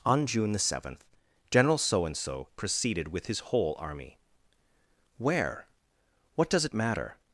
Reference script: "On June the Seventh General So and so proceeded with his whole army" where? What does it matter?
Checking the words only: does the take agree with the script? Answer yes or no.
yes